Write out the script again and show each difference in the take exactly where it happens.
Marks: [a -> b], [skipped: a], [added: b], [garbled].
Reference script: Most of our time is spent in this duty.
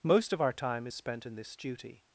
Most of our time is spent in this duty.